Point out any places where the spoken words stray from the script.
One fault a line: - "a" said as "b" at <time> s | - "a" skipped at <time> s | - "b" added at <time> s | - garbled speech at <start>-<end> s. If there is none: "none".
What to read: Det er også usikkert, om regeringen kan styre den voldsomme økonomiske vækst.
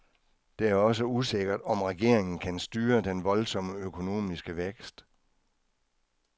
none